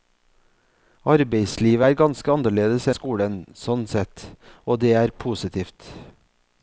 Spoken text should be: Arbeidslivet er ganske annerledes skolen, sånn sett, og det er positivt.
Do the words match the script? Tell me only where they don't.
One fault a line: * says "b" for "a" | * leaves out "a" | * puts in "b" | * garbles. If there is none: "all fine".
all fine